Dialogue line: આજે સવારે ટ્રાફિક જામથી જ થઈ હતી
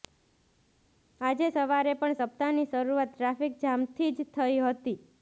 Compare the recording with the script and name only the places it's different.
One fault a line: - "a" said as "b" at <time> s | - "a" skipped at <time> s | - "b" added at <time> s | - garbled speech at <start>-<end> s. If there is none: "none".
- "પણ સપ્તાહની શરૂઆત" added at 2.0 s